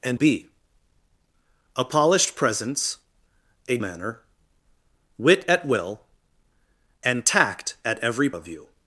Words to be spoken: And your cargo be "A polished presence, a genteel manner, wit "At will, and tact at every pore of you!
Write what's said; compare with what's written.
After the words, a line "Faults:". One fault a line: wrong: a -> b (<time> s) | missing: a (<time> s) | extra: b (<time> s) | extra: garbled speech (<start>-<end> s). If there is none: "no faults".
And be "A polished presence, a manner, wit "At will, and tact at every of you!
Faults:
missing: your cargo (0.2 s)
missing: genteel (3.8 s)
missing: pore (8.3 s)